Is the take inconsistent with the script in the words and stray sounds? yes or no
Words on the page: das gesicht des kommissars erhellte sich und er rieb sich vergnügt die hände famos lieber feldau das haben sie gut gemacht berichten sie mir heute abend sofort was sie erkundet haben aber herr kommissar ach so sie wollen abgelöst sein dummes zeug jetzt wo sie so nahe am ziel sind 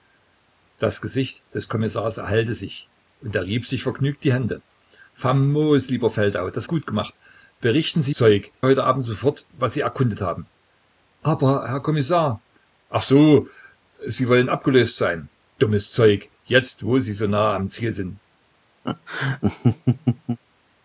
yes